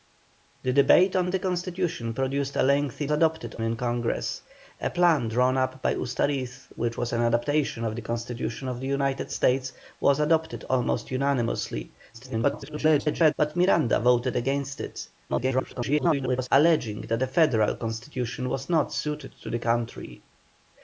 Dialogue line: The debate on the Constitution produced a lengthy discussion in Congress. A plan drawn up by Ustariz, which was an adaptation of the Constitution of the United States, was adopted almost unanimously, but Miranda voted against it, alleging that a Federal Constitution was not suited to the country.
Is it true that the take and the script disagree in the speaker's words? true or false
true